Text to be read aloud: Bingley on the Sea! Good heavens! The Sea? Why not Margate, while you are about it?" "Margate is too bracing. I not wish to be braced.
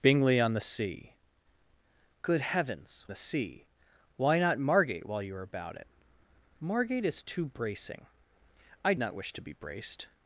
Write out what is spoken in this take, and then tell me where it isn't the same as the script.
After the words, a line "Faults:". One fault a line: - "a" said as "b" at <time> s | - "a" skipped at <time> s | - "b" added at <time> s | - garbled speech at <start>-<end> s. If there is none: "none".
Bingley on the Sea! Good heavens! The Sea? Why not Margate, while you are about it?" "Margate is too bracing. I not wish to be braced.
Faults:
none